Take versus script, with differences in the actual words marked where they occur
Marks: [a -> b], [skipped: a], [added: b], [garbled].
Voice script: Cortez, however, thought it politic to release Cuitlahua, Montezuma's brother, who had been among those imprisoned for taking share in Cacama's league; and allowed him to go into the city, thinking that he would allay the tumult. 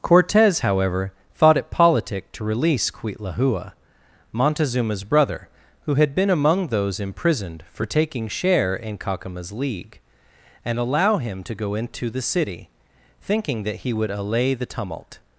Cortez, however, thought it politic to release Cuitlahua, Montezuma's brother, who had been among those imprisoned for taking share in Cacama's league; and [allowed -> allow] him to go into the city, thinking that he would allay the tumult.